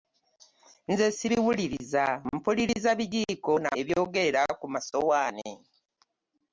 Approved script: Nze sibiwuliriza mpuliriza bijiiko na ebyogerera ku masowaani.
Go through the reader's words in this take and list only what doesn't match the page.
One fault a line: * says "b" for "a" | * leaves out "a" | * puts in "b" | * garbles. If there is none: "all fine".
all fine